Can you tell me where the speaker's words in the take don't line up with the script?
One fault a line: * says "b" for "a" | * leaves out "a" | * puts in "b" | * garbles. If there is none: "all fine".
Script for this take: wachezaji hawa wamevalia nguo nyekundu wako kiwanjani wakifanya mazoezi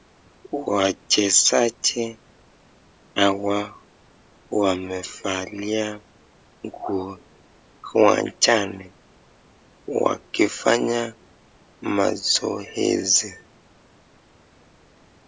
* leaves out "nyekundu wako"